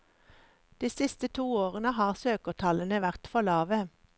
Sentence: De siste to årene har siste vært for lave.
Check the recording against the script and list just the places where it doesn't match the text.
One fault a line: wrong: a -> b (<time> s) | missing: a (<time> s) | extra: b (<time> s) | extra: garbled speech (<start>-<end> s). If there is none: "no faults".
wrong: siste -> søkertallene (2.2 s)